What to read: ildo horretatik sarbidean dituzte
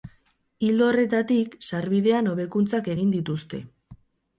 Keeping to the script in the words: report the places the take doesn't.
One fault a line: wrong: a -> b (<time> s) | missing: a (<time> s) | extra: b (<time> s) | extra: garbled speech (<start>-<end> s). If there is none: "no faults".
extra: hobekuntzak egin (2.4 s)